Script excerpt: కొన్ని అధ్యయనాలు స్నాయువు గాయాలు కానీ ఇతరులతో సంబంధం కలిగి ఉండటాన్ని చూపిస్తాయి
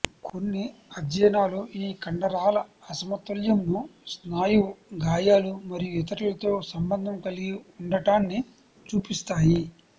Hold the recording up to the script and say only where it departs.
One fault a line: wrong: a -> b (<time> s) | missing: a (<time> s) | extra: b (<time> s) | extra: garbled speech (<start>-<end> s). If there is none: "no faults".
extra: ఈ కండరాల అసమతుల్యంను (1.8 s)
wrong: కానీ -> మరియు (5.7 s)